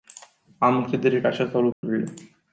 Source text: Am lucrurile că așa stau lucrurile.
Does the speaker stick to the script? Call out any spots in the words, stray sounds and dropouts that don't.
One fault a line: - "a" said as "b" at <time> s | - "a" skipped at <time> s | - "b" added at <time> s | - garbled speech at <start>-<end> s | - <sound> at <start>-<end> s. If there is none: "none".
- "lucrurile" said as "încredere" at 0.8 s
- dropout at 1.7-1.8 s